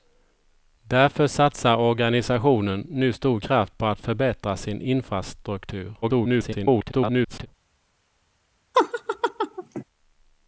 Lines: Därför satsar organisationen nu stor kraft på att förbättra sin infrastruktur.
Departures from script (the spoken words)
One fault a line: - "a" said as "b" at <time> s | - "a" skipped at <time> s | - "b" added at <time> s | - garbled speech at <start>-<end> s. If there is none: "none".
- garbled speech at 6.0-7.5 s